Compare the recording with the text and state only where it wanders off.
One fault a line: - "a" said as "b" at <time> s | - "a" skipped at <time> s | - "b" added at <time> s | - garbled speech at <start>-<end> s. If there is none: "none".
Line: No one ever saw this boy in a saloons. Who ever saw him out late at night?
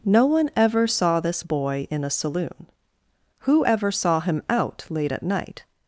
- "saloons" said as "saloon" at 2.1 s